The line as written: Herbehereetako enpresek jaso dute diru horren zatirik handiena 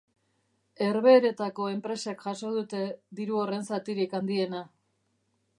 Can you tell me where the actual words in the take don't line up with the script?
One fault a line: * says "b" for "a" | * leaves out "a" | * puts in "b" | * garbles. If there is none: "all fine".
all fine